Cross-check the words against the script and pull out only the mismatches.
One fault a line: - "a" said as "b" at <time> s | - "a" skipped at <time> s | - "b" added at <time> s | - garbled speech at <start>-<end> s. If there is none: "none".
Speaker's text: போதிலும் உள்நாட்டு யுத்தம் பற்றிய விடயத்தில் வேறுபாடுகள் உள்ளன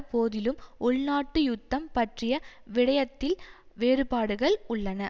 none